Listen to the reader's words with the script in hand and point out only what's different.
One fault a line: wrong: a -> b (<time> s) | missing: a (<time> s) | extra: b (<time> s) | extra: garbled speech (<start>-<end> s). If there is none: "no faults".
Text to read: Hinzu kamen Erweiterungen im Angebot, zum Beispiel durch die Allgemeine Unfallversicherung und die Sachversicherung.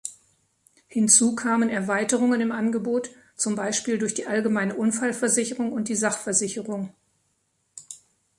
no faults